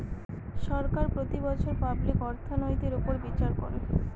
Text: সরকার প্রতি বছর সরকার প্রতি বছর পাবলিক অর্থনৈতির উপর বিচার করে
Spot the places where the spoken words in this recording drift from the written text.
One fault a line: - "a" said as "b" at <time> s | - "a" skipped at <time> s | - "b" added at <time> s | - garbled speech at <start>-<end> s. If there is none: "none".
- "সরকার প্রতি বছর" skipped at 1.7 s